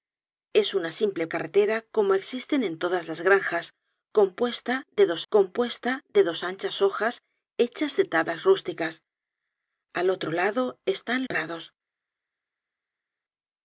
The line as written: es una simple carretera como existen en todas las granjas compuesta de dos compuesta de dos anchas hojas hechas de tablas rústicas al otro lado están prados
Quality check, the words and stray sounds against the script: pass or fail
pass